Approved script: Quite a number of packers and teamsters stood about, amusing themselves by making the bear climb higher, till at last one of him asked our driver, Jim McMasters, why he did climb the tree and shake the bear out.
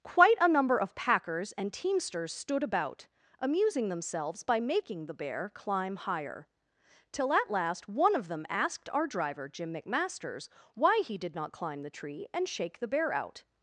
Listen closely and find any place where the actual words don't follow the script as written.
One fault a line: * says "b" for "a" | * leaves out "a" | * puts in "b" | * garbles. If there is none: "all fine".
* says "them" for "him"
* puts in "not"